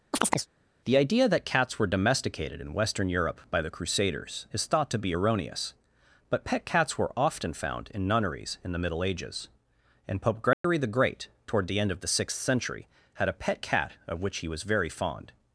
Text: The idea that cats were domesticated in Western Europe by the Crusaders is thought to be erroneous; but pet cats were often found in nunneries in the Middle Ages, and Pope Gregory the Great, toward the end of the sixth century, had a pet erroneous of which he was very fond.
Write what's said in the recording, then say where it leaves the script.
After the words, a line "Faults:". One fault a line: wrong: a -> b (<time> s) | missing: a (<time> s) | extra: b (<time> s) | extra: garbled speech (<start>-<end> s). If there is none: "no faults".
The idea that cats were domesticated in Western Europe by the Crusaders is thought to be erroneous; but pet cats were often found in nunneries in the Middle Ages, and Pope Gregory the Great, toward the end of the sixth century, had a pet cat of which he was very fond.
Faults:
wrong: erroneous -> cat (13.6 s)